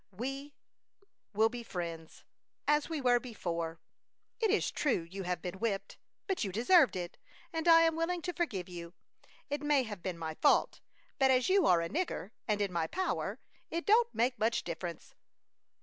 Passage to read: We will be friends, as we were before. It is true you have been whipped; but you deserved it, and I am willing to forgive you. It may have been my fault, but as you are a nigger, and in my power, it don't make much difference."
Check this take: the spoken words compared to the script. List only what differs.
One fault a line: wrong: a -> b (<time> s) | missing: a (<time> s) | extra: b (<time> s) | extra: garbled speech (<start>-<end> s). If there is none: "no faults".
no faults